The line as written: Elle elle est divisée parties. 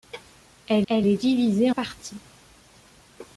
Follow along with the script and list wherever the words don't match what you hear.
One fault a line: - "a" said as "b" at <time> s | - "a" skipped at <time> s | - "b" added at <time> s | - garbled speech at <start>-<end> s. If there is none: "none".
none